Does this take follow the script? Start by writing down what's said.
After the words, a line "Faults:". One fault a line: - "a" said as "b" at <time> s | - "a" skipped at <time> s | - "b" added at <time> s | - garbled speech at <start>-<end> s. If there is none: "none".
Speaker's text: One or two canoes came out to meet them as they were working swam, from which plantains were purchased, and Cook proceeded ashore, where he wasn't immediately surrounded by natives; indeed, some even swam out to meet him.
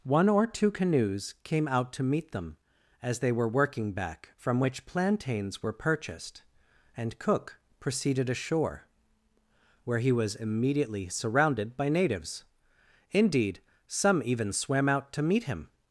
One or two canoes came out to meet them as they were working back, from which plantains were purchased, and Cook proceeded ashore, where he was immediately surrounded by natives; indeed, some even swam out to meet him.
Faults:
- "swam" said as "back" at 3.9 s
- "wasn't" said as "was" at 10.1 s